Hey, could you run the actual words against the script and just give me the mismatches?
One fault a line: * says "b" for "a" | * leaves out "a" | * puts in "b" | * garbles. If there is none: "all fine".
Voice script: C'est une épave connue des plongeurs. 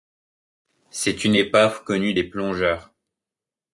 all fine